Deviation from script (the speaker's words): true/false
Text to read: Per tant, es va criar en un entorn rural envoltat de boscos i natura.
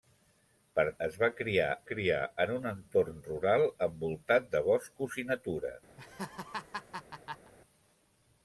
true